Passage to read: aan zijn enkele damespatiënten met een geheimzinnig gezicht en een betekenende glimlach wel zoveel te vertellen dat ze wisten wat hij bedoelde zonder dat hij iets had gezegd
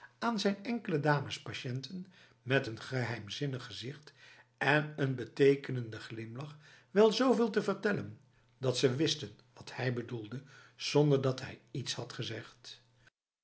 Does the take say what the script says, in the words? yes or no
yes